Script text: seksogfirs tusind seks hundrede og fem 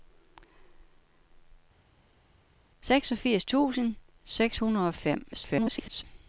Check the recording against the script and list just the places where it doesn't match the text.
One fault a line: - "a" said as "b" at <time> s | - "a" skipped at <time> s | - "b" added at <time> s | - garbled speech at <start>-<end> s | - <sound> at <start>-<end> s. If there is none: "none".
- garbled speech at 5.3-6.0 s